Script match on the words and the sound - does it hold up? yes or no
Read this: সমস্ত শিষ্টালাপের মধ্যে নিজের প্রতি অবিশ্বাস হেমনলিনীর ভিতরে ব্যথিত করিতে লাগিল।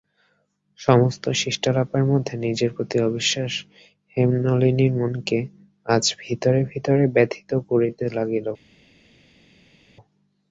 no